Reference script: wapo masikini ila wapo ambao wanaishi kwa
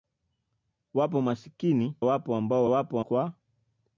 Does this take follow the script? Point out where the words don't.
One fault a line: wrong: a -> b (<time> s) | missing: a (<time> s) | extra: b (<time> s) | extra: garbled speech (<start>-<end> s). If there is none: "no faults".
missing: ila (2.0 s)
wrong: wanaishi -> wapo (2.7 s)